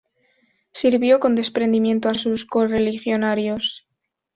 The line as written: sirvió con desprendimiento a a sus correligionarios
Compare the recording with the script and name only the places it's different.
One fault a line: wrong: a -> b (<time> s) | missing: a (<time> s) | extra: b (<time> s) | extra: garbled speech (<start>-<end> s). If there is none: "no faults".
no faults